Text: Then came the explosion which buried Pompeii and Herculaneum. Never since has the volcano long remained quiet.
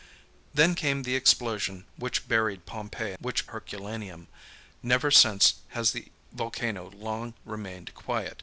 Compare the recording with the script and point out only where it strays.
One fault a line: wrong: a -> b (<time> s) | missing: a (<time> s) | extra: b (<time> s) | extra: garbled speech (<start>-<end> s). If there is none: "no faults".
wrong: and -> which (3.2 s)